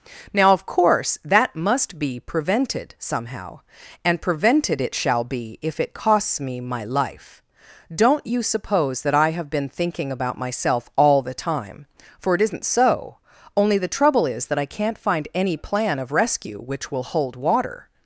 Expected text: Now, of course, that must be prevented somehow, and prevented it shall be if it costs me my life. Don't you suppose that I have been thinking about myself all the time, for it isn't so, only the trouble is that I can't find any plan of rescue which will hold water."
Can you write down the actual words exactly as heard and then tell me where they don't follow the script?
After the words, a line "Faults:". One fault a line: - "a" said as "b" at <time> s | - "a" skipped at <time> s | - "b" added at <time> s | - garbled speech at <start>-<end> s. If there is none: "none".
Now, of course, that must be prevented somehow, and prevented it shall be if it costs me my life. Don't you suppose that I have been thinking about myself all the time, for it isn't so, only the trouble is that I can't find any plan of rescue which will hold water."
Faults:
none